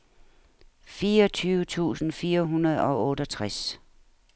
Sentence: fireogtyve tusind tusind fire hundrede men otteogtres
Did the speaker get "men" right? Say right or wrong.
wrong